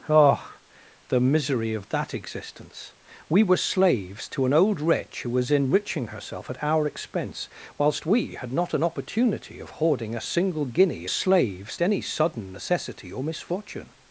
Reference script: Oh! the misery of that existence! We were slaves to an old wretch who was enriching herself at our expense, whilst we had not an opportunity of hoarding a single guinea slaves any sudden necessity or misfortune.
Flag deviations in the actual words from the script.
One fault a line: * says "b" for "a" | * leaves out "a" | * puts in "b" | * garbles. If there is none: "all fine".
all fine